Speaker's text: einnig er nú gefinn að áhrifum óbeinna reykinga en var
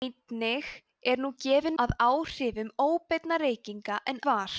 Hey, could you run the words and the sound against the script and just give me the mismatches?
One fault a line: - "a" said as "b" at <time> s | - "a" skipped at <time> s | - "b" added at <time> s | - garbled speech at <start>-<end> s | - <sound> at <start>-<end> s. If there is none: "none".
none